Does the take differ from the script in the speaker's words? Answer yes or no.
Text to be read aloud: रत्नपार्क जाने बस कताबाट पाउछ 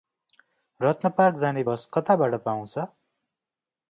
no